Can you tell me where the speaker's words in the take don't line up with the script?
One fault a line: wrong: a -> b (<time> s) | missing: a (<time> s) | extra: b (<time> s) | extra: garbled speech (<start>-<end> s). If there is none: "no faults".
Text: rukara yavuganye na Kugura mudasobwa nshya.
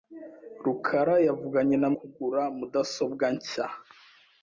no faults